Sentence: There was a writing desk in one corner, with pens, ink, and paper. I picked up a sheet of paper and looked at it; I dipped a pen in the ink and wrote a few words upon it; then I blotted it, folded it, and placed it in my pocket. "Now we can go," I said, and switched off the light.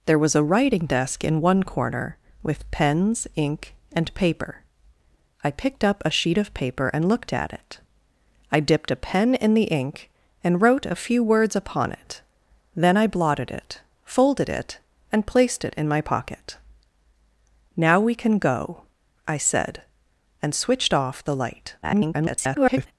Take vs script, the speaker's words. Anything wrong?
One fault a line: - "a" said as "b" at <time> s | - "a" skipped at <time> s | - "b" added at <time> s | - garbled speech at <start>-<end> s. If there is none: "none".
- garbled speech at 21.8-22.9 s